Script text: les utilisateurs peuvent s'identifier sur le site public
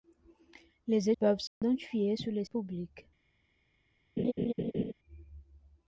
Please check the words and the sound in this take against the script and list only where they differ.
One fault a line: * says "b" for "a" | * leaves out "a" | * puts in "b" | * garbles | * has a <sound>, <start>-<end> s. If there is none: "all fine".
* leaves out "utilisateurs"
* has a dropout, 1.5-1.6 s
* leaves out "site"
* has a laugh, 4.2-4.9 s